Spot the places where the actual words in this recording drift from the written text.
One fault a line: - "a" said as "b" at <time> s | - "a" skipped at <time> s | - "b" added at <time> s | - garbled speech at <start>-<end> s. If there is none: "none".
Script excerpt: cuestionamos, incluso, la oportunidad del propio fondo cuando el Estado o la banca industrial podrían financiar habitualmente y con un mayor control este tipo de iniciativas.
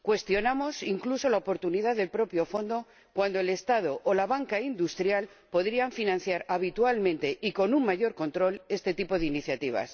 none